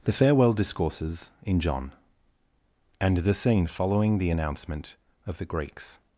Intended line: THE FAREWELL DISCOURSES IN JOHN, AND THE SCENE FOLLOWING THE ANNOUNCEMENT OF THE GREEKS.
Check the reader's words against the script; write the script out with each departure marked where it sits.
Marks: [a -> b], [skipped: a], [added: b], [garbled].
THE FAREWELL DISCOURSES IN JOHN, AND THE SCENE FOLLOWING THE ANNOUNCEMENT OF THE GREEKS.